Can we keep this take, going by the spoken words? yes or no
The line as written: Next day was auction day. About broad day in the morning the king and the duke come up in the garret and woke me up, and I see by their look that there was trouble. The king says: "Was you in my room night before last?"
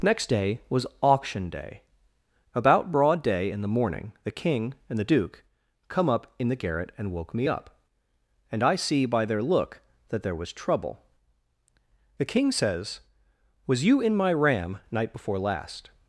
no